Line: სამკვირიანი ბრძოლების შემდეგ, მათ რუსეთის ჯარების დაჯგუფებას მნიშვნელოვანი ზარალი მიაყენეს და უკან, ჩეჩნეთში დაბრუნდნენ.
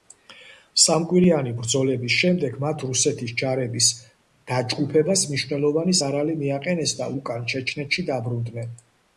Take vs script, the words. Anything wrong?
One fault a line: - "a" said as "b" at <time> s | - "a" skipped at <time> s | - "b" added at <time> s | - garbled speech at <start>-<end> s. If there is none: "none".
none